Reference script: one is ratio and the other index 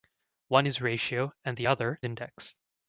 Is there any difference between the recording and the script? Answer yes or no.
no